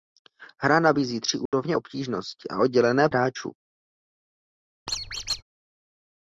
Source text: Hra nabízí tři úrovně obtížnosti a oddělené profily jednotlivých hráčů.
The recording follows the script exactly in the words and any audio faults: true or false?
false